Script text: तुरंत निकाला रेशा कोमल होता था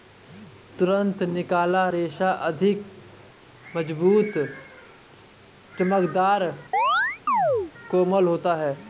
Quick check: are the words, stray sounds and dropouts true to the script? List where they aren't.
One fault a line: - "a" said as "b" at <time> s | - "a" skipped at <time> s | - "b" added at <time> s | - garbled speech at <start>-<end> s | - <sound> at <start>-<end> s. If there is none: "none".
- "अधिक मज़बूत चमकदर" added at 2.3 s
- chirp at 6.7-7.7 s
- "था" said as "है" at 8.5 s